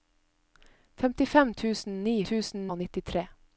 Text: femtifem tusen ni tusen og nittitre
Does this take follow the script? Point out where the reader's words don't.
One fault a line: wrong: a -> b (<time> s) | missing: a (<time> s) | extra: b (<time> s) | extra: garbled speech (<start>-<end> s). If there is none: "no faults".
no faults